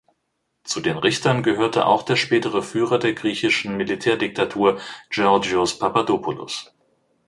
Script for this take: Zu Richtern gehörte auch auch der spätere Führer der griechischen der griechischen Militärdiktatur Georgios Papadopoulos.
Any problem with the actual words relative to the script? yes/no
yes